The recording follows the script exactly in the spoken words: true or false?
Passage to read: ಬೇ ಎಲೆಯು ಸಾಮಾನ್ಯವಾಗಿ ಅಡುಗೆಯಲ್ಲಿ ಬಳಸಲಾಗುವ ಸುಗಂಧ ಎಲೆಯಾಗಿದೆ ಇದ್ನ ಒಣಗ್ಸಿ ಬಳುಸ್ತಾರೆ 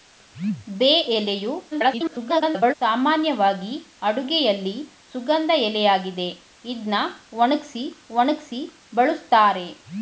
false